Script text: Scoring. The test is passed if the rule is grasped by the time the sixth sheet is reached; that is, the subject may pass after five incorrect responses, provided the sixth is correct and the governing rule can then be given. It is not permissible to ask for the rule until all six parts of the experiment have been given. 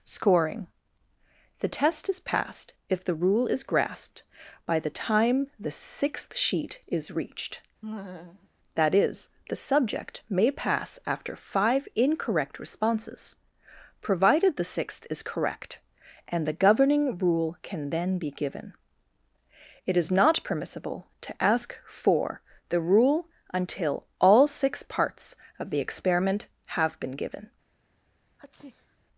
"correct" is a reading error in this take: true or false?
false